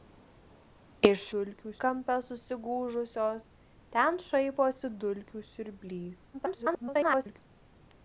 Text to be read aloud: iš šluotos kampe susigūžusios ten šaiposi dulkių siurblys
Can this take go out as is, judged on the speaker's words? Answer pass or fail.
fail